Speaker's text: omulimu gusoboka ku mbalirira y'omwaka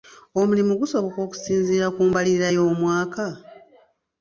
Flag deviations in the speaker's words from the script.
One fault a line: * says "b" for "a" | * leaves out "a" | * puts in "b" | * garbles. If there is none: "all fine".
* puts in "okusinziira"